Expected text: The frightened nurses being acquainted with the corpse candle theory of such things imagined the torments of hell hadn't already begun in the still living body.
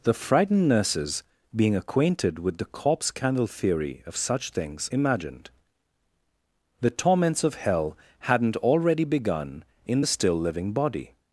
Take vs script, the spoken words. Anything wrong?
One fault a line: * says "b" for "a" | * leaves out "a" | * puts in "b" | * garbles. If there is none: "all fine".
all fine